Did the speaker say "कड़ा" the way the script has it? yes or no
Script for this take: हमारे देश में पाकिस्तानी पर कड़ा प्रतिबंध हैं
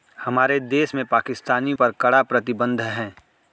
yes